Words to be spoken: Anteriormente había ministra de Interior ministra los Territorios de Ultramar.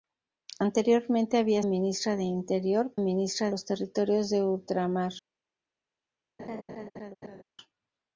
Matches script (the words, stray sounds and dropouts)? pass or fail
fail